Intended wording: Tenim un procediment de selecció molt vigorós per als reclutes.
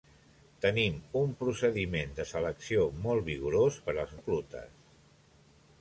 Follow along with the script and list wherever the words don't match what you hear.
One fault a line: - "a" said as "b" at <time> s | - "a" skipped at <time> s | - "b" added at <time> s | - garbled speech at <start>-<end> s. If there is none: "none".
none